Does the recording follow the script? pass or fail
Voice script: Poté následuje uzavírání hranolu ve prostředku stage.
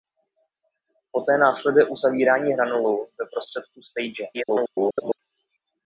fail